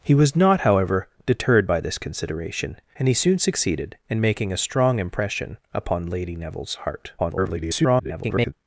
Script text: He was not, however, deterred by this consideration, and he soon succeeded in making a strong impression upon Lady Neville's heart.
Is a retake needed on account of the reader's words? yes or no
yes